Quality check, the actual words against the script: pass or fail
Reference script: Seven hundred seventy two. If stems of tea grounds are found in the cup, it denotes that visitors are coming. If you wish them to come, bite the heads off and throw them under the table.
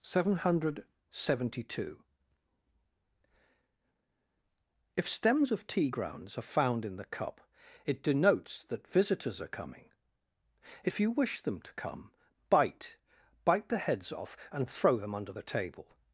fail